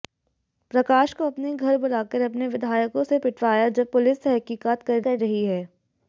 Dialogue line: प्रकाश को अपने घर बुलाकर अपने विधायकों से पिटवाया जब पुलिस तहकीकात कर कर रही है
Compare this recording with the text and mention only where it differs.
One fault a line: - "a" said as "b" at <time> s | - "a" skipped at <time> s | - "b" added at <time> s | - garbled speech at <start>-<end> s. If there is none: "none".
none